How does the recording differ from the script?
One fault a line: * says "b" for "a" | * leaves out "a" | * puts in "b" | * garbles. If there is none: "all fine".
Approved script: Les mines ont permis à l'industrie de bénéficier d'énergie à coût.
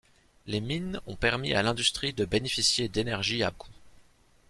all fine